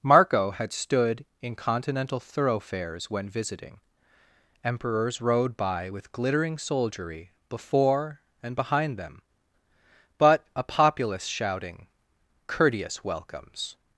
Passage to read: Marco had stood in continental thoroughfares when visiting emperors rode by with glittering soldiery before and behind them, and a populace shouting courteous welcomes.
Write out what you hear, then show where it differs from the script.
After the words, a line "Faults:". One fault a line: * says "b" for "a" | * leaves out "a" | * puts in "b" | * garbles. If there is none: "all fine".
Marco had stood in continental thoroughfares when visiting emperors rode by with glittering soldiery before and behind them, but a populace shouting courteous welcomes.
Faults:
* says "but" for "and"